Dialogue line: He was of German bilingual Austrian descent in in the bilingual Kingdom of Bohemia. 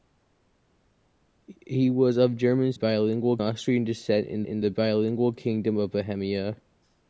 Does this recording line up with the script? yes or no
yes